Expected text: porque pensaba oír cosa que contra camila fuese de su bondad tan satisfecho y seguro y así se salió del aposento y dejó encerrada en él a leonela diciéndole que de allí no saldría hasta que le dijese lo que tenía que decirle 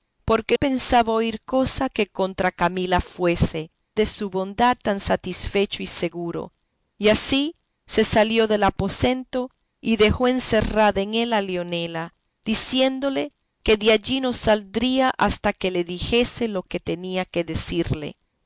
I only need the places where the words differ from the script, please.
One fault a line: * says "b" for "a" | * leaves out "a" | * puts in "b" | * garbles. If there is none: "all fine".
all fine